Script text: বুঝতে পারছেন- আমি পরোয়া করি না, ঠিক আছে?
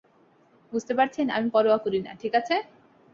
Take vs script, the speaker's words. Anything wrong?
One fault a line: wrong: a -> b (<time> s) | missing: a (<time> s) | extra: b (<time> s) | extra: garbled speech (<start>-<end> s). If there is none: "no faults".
no faults